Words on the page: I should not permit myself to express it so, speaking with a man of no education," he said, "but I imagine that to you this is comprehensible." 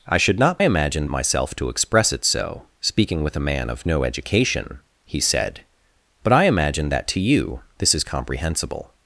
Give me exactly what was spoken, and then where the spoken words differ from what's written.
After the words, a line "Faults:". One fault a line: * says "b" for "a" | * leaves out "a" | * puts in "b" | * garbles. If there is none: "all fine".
I should not imagine myself to express it so, speaking with a man of no education," he said, "but I imagine that to you this is comprehensible."
Faults:
* says "imagine" for "permit"